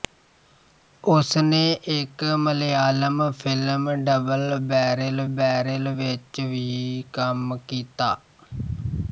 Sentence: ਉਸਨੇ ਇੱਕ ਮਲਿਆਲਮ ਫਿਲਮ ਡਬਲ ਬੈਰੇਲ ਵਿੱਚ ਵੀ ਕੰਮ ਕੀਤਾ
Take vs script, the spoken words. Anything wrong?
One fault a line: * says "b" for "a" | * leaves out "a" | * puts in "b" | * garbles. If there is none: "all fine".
* puts in "ਬੈਰੇਲ"